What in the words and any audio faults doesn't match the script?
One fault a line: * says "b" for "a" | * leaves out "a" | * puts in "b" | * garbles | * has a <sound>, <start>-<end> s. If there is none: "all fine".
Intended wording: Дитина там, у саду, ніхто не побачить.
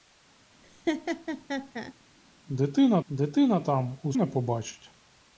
* has a laugh, 0.6-1.9 s
* puts in "дитина"
* leaves out "саду ніхто"